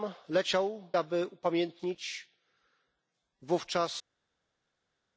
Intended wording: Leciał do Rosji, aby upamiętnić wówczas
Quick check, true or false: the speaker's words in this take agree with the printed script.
false